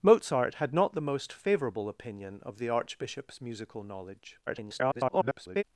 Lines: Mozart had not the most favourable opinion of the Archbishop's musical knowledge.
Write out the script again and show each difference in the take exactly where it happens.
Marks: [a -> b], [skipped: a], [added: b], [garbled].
Mozart had not the most favourable opinion of the Archbishop's musical knowledge. [garbled]